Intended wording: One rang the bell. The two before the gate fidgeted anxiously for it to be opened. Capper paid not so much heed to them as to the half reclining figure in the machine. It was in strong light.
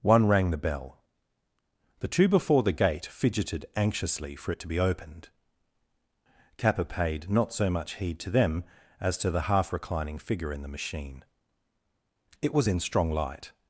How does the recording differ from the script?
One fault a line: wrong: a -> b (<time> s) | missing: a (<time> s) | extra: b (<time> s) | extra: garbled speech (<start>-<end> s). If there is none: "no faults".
no faults